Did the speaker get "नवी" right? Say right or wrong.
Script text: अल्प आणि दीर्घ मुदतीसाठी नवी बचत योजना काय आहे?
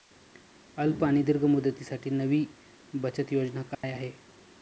right